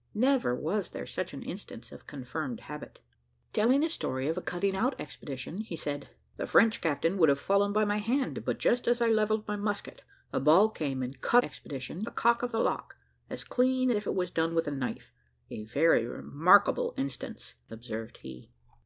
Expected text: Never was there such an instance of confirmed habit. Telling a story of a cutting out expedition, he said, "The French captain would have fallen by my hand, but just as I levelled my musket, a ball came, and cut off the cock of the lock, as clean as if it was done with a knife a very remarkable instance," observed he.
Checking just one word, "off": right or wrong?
wrong